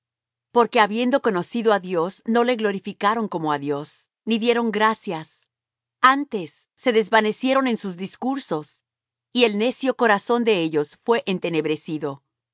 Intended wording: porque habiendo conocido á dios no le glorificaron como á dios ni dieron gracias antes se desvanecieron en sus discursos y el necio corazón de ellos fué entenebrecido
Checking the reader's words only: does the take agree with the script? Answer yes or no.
yes